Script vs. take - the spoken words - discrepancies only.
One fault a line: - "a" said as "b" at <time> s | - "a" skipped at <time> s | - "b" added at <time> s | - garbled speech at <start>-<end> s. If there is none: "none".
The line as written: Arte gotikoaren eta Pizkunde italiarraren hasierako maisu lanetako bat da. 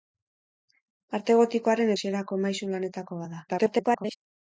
- "eta Pizkunde italiarraren" skipped at 1.9 s
- garbled speech at 3.5-4.2 s